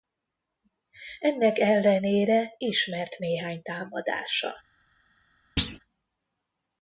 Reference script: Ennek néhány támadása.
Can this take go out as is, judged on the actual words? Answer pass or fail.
fail